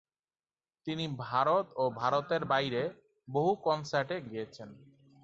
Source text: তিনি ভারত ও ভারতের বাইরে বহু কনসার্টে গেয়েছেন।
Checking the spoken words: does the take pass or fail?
pass